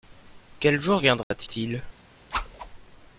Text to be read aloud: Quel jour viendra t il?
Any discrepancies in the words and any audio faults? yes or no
yes